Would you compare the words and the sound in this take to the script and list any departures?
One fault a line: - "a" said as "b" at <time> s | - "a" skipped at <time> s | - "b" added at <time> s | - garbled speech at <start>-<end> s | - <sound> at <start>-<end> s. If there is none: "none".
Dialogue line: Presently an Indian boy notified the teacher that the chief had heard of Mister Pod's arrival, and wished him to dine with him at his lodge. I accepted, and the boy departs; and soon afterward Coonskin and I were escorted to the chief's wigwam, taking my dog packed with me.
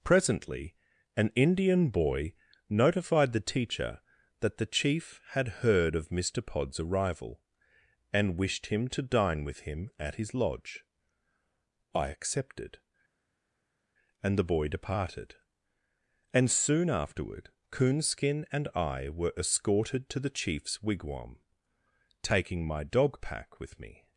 - "departs" said as "departed" at 14.7 s
- "packed" said as "pack" at 23.2 s